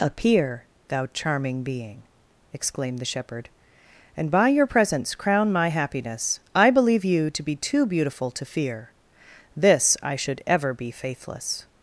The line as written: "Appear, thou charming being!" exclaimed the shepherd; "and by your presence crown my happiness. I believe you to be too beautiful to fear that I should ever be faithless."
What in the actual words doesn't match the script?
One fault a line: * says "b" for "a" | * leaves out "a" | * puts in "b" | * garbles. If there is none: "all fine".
* says "this" for "that"